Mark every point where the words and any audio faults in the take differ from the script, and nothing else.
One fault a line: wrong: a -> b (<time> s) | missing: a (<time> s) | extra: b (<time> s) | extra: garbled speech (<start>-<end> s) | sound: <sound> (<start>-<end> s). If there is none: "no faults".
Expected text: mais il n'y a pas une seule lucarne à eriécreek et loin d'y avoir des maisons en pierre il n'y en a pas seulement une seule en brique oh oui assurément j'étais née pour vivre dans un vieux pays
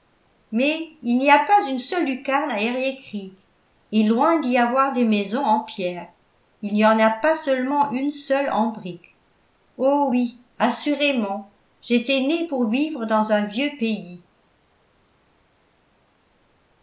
no faults